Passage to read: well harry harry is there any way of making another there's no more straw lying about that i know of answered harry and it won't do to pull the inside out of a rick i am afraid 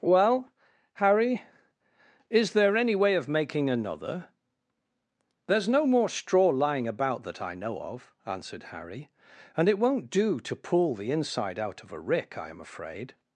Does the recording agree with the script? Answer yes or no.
no